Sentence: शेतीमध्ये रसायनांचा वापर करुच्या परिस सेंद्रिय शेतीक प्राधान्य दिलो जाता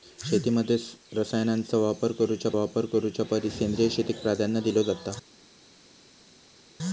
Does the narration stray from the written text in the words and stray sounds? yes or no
yes